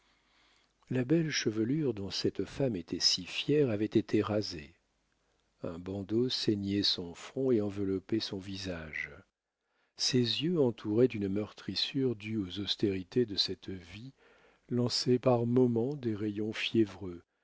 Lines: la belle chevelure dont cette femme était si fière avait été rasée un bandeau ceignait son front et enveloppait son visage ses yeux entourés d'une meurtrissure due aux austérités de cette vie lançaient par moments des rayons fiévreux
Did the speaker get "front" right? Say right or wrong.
right